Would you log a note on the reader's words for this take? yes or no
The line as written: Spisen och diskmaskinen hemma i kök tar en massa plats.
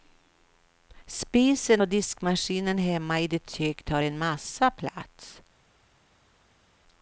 yes